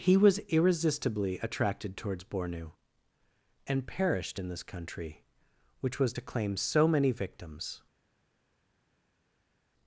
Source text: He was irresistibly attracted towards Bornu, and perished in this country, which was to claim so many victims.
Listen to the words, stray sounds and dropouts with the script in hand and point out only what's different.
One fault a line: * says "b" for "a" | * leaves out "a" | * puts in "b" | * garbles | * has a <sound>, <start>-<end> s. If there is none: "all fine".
all fine